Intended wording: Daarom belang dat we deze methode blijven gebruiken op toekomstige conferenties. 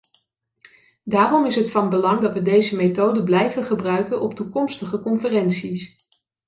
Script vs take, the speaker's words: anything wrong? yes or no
yes